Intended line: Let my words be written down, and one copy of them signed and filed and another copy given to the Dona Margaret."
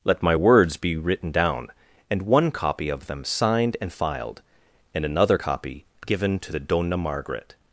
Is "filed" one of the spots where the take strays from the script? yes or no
no